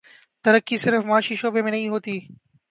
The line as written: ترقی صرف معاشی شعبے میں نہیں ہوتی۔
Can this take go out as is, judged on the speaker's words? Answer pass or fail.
pass